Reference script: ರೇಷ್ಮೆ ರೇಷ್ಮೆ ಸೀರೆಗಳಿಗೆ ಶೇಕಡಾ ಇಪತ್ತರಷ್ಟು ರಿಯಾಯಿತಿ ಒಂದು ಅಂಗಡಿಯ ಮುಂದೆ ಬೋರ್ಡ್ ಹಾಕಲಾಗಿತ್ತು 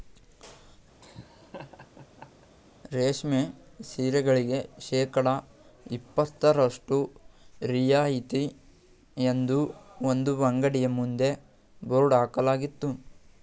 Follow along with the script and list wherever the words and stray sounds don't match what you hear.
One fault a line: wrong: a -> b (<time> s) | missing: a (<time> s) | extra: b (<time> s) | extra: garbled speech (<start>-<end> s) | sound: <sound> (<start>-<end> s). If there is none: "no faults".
sound: laugh (1.0-2.5 s)
missing: ರೇಷ್ಮೆ (3.4 s)
extra: ಎಂದು (9.3 s)